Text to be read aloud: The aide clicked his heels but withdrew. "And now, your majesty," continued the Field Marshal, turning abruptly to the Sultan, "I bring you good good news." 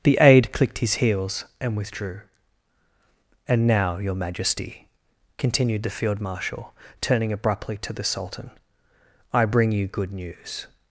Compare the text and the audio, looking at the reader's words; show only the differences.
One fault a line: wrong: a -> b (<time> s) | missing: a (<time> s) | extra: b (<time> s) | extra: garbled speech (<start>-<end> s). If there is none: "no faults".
wrong: but -> and (1.6 s)
missing: good (10.1 s)